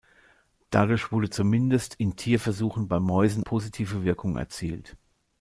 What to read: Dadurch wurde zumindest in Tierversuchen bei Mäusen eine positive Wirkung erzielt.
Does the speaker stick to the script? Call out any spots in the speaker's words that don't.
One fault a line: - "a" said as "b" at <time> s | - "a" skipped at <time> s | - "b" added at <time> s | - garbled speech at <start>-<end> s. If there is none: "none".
- "eine" skipped at 3.4 s